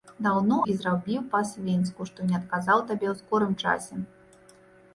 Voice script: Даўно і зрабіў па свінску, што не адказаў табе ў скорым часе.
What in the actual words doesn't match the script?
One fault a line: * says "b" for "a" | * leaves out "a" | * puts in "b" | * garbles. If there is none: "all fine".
all fine